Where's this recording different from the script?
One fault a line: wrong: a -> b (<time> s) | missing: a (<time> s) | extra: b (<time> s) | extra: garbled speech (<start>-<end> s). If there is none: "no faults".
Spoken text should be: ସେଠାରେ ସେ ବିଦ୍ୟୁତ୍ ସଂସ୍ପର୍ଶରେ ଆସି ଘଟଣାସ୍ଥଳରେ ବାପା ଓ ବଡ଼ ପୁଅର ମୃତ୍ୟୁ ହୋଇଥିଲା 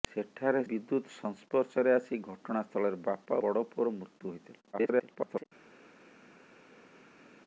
missing: ସେ (0.6 s)
missing: ଓ (3.4 s)
extra: garbled speech (4.7-5.4 s)